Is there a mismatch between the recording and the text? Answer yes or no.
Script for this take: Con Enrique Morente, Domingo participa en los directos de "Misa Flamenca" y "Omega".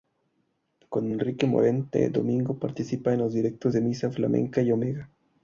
no